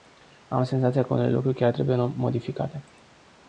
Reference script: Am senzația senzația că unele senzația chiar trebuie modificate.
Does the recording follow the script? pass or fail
fail